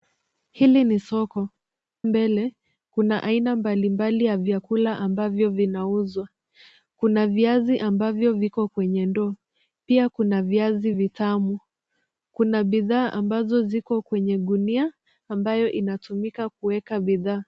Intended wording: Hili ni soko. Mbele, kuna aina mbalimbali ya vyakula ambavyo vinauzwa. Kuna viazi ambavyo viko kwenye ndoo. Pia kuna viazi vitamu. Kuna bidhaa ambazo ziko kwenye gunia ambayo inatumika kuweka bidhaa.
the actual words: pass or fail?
pass